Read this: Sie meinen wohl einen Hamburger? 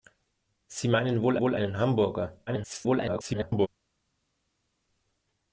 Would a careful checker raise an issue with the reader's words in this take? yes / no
yes